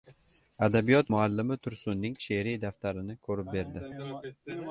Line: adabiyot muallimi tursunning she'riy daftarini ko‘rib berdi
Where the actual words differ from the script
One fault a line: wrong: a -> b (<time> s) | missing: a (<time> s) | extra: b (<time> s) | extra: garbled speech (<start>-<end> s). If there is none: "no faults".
no faults